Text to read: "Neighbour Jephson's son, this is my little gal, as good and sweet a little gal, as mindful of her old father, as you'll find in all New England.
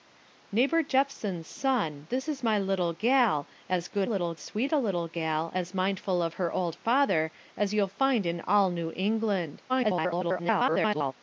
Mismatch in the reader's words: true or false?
true